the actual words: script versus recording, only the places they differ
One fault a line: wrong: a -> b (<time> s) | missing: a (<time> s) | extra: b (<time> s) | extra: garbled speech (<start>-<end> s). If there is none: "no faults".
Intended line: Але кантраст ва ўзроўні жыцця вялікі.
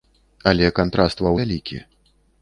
missing: ўзроўні жыцця (1.3 s)